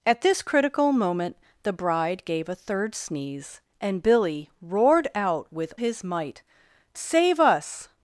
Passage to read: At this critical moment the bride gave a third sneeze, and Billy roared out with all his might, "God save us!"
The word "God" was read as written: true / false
false